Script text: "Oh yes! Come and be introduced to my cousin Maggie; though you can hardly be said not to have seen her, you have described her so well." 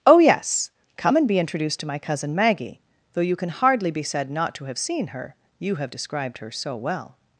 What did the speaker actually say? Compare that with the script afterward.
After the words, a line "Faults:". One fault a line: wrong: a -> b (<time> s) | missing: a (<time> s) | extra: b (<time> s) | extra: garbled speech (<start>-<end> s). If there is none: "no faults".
"Oh yes! Come and be introduced to my cousin Maggie; though you can hardly be said not to have seen her, you have described her so well."
Faults:
no faults